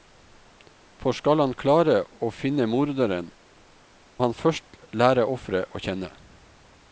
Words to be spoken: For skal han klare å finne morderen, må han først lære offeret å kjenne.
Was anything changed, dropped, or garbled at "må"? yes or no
yes